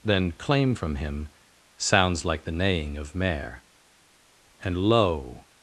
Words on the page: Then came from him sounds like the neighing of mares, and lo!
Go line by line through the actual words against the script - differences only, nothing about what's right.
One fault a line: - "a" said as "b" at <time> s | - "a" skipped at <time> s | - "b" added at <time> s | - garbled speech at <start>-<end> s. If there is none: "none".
- "came" said as "claim" at 0.3 s
- "mares" said as "mare" at 3.1 s